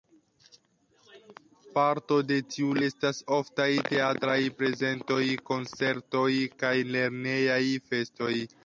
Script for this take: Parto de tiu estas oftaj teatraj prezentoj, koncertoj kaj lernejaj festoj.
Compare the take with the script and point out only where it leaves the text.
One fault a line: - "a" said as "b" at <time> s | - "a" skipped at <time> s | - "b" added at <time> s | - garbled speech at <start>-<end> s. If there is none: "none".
none